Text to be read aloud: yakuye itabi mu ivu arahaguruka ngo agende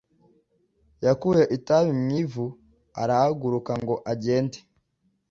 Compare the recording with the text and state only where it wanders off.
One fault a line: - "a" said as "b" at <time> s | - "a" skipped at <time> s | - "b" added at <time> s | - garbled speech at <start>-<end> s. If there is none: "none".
none